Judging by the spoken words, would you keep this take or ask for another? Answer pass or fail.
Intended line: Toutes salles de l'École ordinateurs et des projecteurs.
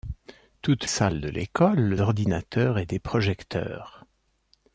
pass